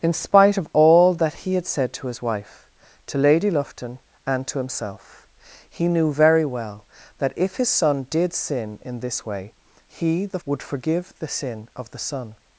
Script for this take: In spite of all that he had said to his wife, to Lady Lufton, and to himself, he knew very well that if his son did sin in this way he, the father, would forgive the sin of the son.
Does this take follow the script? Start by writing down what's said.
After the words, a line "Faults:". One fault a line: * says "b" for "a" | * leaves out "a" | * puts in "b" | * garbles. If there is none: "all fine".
In spite of all that he had said to his wife, to Lady Lufton, and to himself, he knew very well that if his son did sin in this way he, the would forgive the sin of the son.
Faults:
* leaves out "father"